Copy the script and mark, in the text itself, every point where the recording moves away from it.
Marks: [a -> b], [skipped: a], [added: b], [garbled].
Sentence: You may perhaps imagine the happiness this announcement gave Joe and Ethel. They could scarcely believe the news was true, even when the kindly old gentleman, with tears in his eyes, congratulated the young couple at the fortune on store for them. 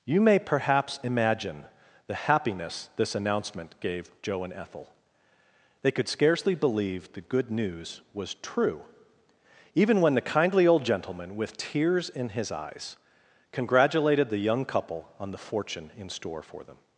You may perhaps imagine the happiness this announcement gave Joe and Ethel. They could scarcely believe the [added: good] news was true, even when the kindly old gentleman, with tears in his eyes, congratulated the young couple [at -> on] the fortune [on -> in] store for them.